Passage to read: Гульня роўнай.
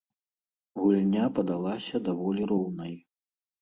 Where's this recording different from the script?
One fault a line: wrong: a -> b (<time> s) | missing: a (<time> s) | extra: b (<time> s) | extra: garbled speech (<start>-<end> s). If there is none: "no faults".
extra: падалася даволі (1.4 s)